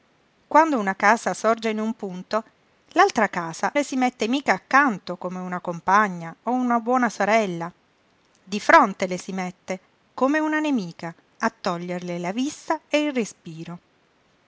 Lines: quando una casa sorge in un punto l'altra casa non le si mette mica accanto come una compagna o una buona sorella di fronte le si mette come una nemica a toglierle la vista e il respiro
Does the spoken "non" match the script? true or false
false